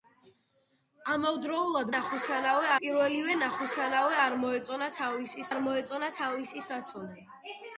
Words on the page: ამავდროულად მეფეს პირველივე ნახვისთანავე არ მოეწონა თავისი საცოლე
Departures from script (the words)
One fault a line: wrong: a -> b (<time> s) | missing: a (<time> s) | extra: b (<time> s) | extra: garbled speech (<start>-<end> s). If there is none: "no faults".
wrong: მეფეს -> ნახვისთანავე (1.9 s)
extra: არ მოეწონა თავისი (5.5 s)